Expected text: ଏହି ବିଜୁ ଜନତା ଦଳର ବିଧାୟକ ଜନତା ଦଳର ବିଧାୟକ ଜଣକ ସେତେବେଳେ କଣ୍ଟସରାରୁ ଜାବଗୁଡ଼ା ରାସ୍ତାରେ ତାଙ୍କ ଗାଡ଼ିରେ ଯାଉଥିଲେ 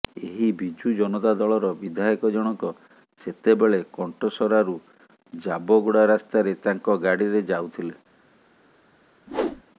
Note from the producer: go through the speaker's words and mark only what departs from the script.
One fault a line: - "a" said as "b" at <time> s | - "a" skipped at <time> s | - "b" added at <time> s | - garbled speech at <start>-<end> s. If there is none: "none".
- "ଜନତା ଦଳର ବିଧାୟକ" skipped at 2.3 s